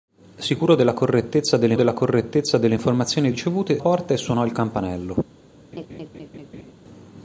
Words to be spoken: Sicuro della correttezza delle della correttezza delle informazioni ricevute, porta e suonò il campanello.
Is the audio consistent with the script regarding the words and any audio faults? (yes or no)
no